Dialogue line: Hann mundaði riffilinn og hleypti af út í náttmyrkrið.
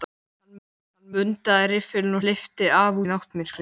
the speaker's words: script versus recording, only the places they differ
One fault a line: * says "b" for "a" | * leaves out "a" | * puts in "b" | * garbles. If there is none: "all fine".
* puts in "hann"
* leaves out "og"
* leaves out "út"